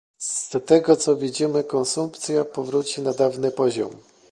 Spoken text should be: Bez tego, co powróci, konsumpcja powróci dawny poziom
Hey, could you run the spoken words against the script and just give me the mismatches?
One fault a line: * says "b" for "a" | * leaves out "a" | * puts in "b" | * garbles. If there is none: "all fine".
* says "Z" for "Bez"
* says "widzimy" for "powróci"
* puts in "na"